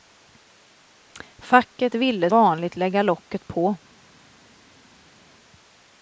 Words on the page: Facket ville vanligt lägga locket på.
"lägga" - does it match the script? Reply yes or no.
yes